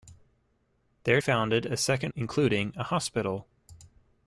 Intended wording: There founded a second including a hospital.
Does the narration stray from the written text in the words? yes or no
no